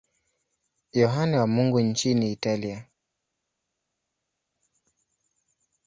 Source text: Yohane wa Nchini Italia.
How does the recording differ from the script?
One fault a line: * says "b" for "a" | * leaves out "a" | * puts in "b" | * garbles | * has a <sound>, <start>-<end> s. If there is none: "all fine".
* puts in "Mungu"